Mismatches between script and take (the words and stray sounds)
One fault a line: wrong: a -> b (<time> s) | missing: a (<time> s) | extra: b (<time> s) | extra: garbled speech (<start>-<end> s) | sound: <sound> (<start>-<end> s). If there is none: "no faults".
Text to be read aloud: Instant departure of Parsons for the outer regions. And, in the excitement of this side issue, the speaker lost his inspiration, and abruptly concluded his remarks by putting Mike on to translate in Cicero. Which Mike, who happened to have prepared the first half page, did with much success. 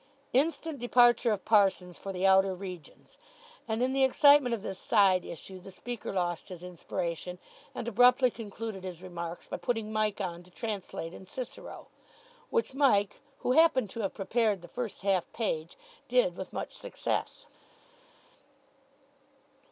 no faults